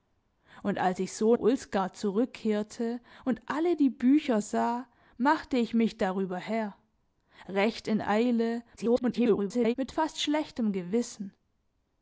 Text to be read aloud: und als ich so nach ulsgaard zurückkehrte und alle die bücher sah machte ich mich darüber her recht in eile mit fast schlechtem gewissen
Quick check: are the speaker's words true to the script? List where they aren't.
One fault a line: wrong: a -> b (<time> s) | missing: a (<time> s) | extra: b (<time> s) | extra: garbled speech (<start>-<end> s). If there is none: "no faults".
missing: nach (1.4 s)
extra: garbled speech (8.8-9.7 s)